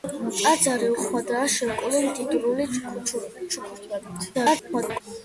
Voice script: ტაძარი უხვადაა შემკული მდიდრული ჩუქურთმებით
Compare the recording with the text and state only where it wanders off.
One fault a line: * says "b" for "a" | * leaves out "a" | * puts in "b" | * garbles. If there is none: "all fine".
* garbles